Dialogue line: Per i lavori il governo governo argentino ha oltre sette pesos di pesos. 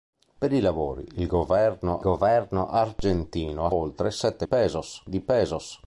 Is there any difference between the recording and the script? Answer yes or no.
no